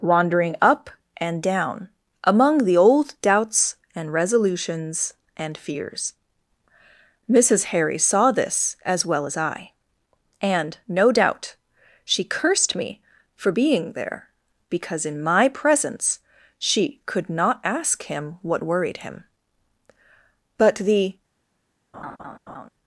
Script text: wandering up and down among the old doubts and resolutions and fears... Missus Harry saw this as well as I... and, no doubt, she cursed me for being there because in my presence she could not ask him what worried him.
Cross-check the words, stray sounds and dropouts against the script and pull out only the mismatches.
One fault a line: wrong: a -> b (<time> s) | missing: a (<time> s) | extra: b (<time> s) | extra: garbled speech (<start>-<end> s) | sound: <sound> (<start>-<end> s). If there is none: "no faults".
extra: But the (20.6 s)
sound: laugh (21.9-22.7 s)